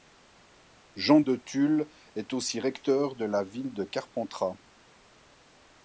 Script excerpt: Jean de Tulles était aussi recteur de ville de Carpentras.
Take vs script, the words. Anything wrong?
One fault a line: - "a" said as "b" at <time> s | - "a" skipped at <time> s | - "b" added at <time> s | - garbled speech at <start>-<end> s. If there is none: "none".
- "était" said as "est" at 2.2 s
- "la" added at 3.2 s